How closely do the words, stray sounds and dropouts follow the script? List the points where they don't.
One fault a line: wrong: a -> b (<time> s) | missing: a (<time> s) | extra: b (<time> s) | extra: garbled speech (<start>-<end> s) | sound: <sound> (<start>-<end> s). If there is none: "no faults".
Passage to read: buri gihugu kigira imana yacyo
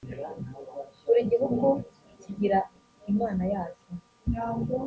no faults